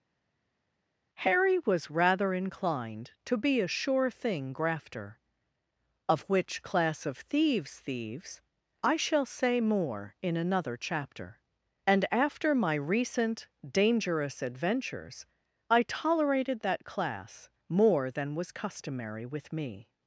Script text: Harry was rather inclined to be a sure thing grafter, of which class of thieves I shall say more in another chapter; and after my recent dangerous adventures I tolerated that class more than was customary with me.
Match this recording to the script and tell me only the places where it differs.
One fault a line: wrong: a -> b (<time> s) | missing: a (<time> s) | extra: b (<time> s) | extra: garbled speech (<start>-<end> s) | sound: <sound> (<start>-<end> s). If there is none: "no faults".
extra: thieves (7.8 s)